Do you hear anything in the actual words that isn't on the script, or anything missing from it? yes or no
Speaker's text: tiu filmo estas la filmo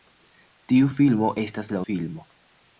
no